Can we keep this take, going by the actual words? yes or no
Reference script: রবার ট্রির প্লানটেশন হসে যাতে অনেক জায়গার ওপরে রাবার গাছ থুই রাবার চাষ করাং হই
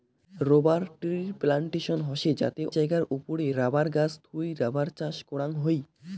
no